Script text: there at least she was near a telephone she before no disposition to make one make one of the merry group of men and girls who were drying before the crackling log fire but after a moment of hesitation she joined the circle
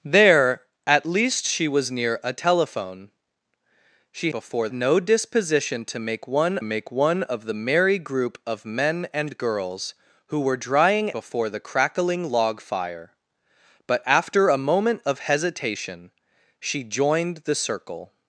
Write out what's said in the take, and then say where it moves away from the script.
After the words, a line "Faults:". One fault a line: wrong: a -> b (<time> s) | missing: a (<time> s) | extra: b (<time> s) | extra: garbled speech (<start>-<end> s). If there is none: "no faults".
there at least she was near a telephone she before no disposition to make one make one of the merry group of men and girls who were drying before the crackling log fire but after a moment of hesitation she joined the circle
Faults:
no faults